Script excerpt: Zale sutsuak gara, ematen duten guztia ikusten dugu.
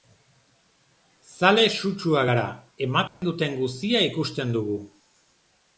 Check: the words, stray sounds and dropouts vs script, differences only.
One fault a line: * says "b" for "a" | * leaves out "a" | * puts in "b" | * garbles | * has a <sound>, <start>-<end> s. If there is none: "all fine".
* has a dropout, 3.1-3.2 s